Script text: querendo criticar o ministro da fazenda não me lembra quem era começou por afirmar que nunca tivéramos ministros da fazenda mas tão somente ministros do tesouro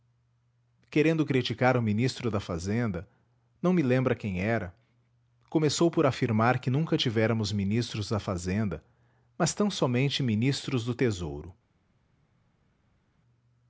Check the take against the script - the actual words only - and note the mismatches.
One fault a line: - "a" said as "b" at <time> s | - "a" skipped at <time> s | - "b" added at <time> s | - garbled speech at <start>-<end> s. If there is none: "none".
none